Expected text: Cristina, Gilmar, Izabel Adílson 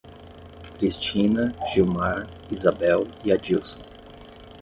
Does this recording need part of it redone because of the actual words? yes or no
yes